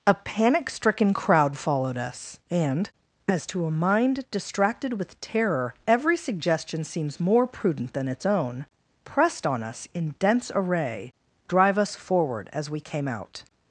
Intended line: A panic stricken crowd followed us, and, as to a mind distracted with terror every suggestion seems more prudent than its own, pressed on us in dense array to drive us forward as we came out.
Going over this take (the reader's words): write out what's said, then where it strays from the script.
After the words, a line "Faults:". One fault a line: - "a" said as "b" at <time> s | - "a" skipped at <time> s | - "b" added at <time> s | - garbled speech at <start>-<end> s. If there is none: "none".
A panic stricken crowd followed us, and, as to a mind distracted with terror every suggestion seems more prudent than its own, pressed on us in dense array drive us forward as we came out.
Faults:
- "to" skipped at 11.1 s